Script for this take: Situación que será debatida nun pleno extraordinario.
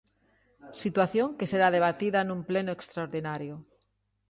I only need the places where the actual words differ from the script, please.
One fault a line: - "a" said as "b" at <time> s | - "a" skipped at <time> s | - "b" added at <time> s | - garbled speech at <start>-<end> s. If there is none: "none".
none